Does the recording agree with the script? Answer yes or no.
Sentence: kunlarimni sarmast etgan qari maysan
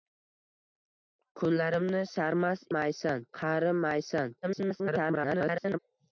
no